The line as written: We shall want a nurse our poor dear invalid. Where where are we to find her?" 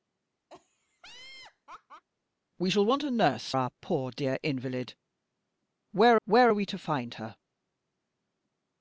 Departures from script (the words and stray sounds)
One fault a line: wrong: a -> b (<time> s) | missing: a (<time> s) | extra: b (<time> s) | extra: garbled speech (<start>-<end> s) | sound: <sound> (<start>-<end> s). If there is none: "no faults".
sound: laugh (0.5-2.0 s)